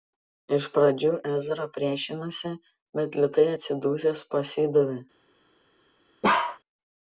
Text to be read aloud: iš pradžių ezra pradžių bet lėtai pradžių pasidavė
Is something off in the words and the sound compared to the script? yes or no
yes